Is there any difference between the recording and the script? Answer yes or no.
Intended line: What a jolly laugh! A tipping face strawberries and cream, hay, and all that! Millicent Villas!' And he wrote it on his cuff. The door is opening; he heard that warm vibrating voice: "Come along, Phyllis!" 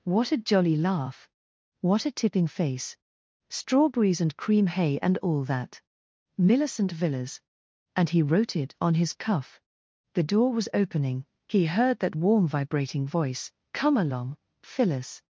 yes